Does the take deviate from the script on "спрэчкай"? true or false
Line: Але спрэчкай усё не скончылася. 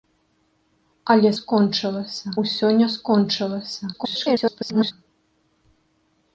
true